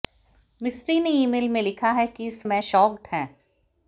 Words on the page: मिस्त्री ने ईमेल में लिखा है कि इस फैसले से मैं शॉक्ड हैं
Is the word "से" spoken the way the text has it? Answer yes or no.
no